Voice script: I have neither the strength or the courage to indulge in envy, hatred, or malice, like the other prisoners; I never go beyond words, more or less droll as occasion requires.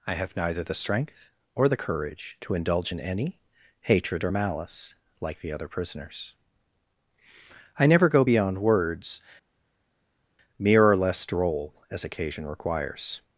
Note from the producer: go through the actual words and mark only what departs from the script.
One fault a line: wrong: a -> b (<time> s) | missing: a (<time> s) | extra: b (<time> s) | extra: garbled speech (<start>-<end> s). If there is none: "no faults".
wrong: envy -> any (3.0 s)
wrong: more -> mere (10.6 s)